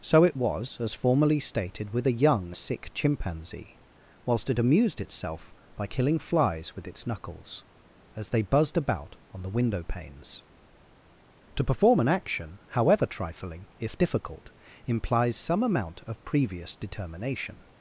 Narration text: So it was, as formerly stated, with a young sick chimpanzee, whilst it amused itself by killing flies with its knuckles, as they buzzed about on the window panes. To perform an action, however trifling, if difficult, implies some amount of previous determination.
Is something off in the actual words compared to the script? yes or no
no